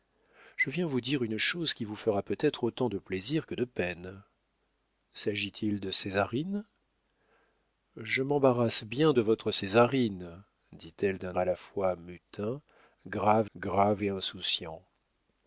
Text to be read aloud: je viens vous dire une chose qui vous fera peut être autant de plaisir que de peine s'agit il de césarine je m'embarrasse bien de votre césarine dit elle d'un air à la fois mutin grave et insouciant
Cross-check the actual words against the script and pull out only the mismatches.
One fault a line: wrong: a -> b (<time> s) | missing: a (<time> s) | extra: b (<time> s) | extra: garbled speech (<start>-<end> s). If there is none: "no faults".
missing: air (11.4 s)
extra: grave (13.6 s)